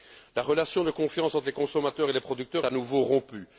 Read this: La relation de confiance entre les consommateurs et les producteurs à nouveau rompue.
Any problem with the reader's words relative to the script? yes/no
no